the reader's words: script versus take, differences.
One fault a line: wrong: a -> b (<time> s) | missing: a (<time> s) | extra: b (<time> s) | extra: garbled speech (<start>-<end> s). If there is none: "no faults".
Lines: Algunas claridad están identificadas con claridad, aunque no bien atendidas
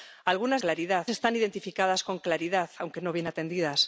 no faults